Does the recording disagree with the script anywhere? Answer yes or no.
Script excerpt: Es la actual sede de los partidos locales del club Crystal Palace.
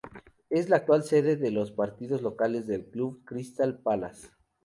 no